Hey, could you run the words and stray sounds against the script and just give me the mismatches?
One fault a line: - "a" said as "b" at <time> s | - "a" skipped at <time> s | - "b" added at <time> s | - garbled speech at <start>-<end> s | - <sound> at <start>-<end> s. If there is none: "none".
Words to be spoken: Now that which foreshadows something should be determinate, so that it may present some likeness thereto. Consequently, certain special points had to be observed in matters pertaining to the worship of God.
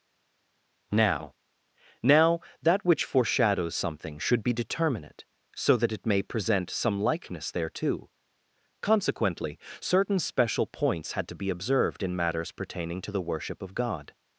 - "now" added at 2.0 s